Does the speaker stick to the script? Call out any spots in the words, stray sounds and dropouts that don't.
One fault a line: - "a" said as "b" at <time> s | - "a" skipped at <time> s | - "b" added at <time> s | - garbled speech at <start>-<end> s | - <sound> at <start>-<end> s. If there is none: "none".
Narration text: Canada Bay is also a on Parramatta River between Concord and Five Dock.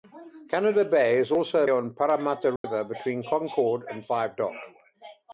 - dropout at 2.6-2.6 s